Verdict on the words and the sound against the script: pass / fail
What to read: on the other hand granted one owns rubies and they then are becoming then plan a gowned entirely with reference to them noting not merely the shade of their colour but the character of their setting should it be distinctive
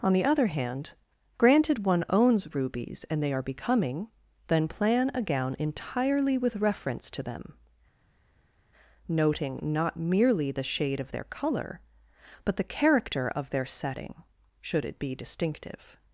fail